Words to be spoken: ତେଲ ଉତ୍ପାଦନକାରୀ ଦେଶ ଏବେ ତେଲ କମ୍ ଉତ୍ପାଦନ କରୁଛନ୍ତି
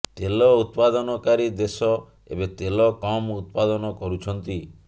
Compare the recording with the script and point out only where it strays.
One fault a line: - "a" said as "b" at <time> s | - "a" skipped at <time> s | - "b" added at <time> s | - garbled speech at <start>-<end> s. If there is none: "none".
none